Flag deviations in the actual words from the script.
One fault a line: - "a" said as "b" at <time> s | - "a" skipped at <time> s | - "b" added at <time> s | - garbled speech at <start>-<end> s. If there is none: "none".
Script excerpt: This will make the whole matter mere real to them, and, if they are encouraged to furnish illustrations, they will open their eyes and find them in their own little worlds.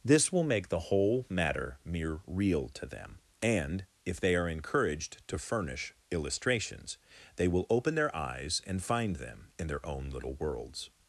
none